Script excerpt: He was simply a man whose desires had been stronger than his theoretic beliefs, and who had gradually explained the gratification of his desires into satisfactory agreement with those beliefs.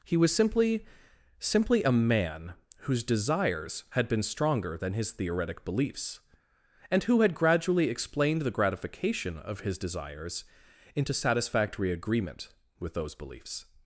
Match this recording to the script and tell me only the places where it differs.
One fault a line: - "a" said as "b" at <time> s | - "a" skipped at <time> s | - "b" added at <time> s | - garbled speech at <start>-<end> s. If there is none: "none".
- "simply" added at 1.4 s